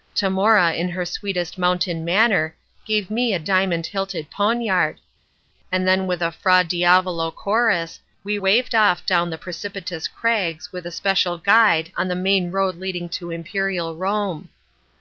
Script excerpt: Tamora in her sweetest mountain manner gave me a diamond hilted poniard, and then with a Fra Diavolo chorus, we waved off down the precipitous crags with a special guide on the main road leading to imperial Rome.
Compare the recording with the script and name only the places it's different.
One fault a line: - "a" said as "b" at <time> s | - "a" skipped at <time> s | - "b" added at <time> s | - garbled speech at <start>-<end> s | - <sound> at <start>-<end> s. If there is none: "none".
none